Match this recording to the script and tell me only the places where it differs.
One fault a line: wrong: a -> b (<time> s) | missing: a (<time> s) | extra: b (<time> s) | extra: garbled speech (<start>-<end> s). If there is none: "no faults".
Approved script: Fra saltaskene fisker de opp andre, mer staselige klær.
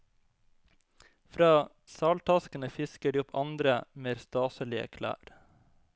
no faults